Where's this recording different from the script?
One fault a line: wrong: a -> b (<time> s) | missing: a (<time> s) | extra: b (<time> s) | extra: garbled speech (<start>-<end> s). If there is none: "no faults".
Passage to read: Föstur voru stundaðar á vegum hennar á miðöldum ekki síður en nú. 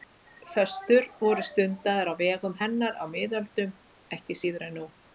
no faults